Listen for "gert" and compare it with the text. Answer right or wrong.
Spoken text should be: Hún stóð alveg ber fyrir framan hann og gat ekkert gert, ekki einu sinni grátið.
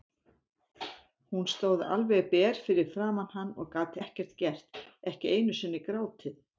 right